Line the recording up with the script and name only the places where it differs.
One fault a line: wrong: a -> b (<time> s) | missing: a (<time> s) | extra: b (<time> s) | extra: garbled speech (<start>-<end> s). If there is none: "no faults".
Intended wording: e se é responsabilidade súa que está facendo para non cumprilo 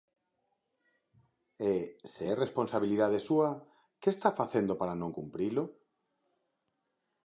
no faults